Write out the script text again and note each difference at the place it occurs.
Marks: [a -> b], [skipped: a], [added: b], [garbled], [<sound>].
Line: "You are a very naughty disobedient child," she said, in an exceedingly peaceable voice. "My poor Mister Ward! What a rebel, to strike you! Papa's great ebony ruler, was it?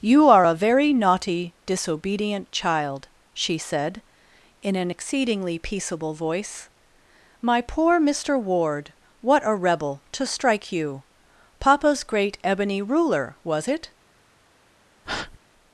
"You are a very naughty disobedient child," she said, in an exceedingly peaceable voice. "My poor Mister Ward! What a rebel, to strike you! Papa's great ebony ruler, was it? [breath]